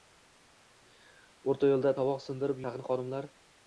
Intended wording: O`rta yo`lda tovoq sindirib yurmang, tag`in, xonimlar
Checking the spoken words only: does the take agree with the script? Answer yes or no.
no